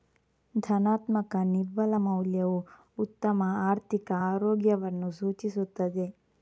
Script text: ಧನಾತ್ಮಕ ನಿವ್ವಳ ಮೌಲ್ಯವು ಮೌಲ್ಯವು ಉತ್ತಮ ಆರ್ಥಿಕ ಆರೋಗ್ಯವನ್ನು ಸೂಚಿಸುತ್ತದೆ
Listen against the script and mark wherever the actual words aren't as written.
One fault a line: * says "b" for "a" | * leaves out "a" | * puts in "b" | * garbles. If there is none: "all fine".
* leaves out "ಮೌಲ್ಯವು"